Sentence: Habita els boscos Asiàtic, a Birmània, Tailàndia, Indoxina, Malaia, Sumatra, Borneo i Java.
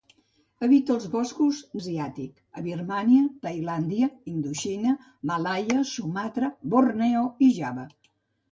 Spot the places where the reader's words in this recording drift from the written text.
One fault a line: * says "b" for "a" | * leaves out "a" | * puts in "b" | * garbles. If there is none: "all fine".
all fine